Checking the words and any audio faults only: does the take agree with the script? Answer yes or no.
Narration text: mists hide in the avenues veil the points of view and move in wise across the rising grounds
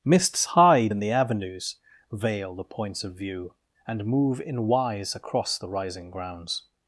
yes